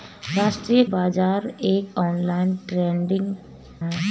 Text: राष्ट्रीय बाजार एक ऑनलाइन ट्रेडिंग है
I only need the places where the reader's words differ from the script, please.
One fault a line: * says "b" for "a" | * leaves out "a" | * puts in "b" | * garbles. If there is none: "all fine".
all fine